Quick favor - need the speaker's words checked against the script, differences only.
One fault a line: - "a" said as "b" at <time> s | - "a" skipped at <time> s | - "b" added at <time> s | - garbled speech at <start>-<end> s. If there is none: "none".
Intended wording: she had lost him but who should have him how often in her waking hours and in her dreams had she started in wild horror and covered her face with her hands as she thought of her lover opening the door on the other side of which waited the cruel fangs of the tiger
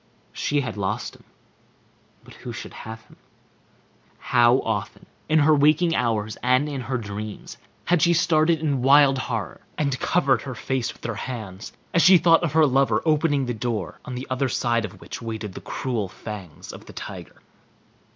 none